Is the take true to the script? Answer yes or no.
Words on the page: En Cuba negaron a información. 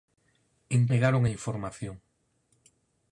no